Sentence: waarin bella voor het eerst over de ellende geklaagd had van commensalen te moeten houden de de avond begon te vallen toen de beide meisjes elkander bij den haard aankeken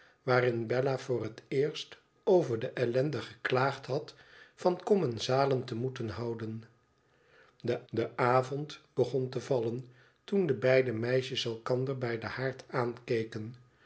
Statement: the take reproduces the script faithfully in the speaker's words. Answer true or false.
true